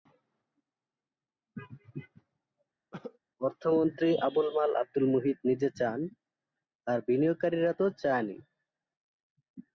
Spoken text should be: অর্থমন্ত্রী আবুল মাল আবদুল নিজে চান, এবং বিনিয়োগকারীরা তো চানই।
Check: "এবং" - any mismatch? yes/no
yes